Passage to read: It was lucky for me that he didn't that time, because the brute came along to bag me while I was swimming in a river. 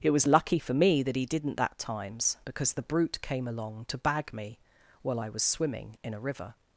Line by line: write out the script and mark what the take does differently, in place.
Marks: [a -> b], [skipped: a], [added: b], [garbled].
It was lucky for me that he didn't that [time, -> times] because the brute came along to bag me while I was swimming in a river.